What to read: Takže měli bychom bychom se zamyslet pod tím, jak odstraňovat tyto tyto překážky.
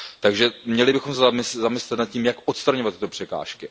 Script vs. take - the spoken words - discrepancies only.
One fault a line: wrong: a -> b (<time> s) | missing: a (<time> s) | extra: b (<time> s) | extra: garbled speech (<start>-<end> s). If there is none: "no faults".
missing: bychom (1.1 s)
wrong: pod -> nad (2.0 s)
missing: tyto (3.1 s)